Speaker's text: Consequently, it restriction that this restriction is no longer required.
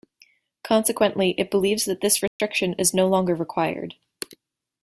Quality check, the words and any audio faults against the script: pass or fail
fail